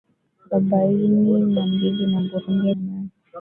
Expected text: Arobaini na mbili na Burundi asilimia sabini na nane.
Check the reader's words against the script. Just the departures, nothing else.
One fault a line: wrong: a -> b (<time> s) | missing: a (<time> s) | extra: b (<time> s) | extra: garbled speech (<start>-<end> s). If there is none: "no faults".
missing: asilimia sabini (2.7 s)